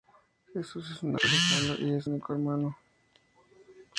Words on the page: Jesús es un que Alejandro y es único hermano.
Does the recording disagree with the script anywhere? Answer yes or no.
no